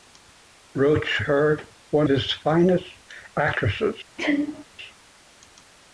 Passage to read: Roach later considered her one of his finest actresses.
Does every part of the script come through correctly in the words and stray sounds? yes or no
no